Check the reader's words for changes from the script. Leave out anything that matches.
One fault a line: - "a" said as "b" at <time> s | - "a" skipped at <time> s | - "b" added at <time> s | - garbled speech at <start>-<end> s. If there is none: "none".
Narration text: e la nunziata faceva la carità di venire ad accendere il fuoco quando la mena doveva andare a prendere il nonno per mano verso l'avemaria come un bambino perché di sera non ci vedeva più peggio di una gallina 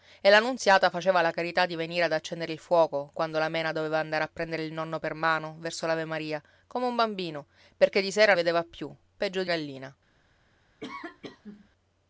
- "non ci" skipped at 8.3 s
- "una" skipped at 9.5 s